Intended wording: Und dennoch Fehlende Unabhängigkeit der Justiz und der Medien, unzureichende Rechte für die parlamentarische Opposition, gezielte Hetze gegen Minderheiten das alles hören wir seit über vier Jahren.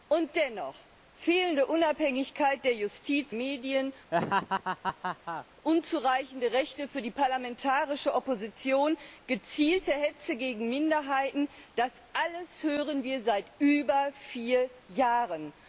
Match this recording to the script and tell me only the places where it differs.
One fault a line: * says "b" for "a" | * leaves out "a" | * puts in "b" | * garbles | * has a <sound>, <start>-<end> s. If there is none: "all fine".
* leaves out "und der"
* has a laugh, 4.1-5.5 s